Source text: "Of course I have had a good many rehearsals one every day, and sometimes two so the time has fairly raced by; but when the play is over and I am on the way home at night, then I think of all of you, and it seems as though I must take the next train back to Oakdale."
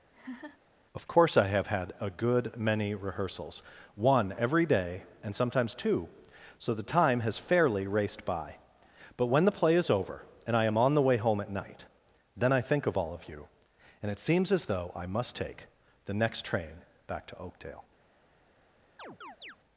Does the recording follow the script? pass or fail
pass